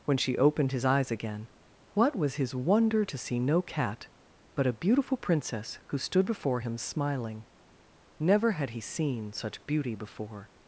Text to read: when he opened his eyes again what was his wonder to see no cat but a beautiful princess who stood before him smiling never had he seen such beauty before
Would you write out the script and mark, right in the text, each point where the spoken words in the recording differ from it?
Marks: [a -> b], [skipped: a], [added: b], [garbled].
when [he -> she] opened his eyes again what was his wonder to see no cat but a beautiful princess who stood before him smiling never had he seen such beauty before